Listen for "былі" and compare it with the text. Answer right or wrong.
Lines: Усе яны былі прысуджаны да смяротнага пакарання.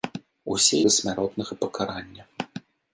wrong